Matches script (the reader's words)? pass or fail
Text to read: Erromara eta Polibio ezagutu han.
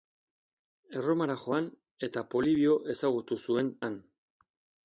fail